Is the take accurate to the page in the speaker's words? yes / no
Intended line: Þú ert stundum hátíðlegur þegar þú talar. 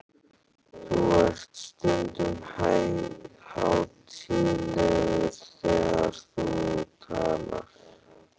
yes